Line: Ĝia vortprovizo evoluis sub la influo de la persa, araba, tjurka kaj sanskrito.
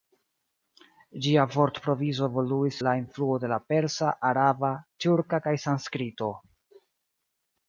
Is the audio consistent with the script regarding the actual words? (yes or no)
no